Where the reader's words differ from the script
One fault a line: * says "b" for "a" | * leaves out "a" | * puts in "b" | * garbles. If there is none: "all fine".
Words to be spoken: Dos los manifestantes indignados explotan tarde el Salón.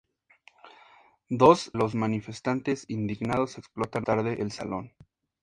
all fine